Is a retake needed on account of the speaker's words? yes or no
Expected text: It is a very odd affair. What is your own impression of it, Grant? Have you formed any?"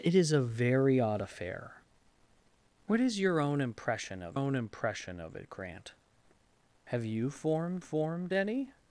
yes